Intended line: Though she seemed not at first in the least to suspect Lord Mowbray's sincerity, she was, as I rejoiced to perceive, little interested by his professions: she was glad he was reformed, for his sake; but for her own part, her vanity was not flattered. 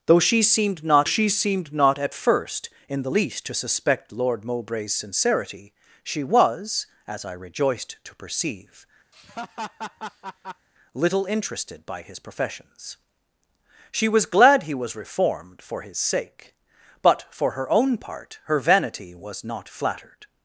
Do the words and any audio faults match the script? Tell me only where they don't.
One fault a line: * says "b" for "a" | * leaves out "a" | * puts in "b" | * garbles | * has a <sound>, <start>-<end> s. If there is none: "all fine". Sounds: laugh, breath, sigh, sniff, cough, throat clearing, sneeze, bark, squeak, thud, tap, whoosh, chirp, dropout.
* puts in "she seemed not"
* has a laugh, 9.1-10.7 s